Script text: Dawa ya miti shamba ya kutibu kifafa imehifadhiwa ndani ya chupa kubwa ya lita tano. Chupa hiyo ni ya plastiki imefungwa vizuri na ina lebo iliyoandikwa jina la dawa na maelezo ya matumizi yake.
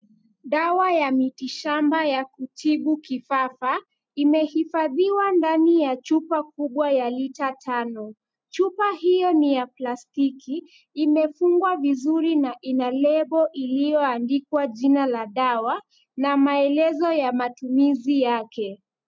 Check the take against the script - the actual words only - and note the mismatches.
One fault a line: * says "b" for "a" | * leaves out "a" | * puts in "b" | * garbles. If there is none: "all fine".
all fine